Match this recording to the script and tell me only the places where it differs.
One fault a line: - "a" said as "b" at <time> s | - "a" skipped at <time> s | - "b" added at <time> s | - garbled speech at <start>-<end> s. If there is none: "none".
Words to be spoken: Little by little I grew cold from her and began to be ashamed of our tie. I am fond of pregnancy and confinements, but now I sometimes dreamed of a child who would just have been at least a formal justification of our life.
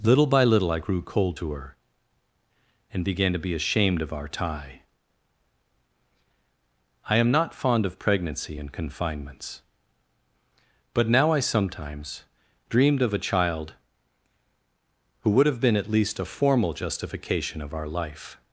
- "from" said as "to" at 1.4 s
- "not" added at 7.3 s
- "just" skipped at 15.5 s